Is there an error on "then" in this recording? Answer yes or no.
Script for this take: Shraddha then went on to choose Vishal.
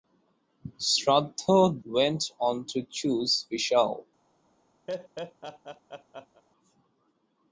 yes